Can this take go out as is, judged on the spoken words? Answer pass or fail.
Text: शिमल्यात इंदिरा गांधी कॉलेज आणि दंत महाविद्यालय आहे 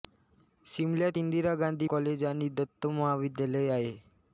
pass